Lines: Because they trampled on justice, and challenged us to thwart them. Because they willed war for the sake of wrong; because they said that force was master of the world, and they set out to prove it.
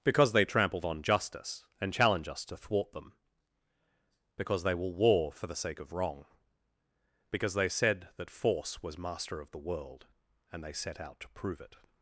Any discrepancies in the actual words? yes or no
yes